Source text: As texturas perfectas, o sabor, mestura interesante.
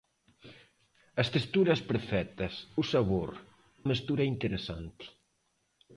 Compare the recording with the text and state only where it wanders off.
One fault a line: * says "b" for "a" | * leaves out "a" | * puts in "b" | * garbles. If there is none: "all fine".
all fine